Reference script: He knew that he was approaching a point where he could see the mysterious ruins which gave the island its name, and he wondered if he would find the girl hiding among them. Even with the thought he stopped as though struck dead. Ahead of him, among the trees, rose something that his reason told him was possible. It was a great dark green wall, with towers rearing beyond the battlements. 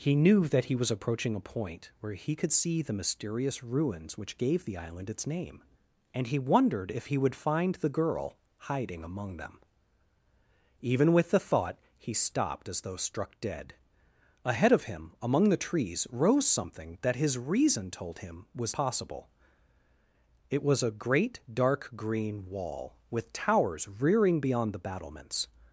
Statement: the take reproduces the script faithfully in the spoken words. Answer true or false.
true